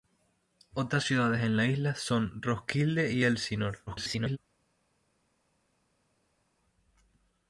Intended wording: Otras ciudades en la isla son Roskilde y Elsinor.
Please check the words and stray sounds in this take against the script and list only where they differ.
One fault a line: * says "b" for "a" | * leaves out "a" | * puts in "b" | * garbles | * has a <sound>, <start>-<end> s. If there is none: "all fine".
* garbles